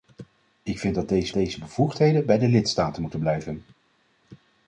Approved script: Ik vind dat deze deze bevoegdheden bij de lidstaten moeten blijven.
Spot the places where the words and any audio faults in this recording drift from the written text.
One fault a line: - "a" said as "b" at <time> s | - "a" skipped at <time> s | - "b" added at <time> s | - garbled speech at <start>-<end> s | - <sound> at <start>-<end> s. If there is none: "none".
none